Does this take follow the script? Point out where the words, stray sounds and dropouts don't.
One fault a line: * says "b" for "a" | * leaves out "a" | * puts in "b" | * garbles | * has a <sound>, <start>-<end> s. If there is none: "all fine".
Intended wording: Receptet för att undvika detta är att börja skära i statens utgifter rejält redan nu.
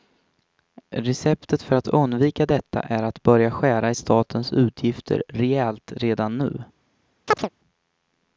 * has a chirp, 7.3-7.5 s